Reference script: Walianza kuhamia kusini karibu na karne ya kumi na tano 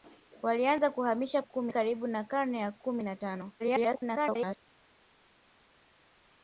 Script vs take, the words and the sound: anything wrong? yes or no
yes